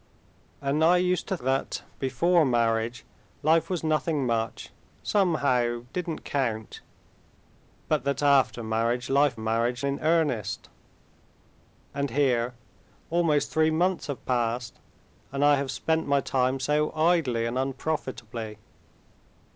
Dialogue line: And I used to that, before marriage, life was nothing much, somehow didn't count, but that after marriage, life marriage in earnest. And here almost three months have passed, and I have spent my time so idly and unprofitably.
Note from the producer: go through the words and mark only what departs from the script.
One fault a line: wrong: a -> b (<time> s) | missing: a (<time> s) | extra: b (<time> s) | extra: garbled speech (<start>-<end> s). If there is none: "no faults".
no faults